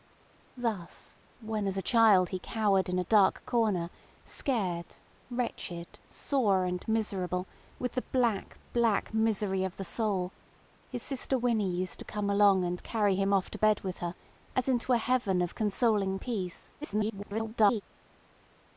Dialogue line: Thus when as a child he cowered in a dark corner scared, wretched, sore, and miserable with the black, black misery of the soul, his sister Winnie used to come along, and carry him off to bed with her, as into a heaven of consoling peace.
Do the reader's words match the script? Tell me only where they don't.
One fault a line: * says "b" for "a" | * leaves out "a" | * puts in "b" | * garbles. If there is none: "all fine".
* garbles